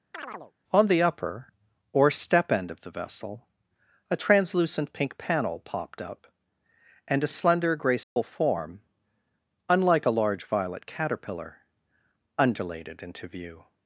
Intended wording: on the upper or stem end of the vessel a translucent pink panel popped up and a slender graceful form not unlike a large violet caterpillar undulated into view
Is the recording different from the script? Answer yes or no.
yes